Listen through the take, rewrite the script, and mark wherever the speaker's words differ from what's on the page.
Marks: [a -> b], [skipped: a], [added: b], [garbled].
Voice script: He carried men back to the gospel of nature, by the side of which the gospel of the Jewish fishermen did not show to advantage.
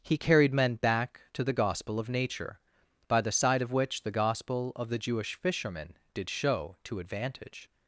He carried men back to the gospel of nature, by the side of which the gospel of the Jewish fishermen did [skipped: not] show to advantage.